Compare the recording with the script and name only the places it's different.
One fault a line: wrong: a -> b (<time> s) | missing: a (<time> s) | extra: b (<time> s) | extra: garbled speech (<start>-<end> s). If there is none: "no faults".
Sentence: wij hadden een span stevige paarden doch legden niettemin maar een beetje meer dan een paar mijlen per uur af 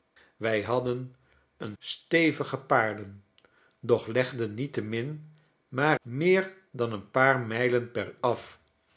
missing: span (1.8 s)
missing: een beetje (6.0 s)
missing: uur (8.2 s)